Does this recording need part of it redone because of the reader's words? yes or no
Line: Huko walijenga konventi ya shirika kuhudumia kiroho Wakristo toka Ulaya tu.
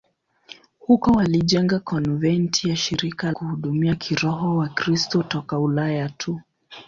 no